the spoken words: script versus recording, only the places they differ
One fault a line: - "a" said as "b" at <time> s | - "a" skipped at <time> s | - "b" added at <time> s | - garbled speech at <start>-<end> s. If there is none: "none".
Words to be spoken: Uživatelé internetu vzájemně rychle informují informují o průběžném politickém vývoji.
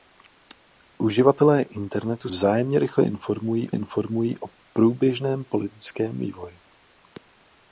none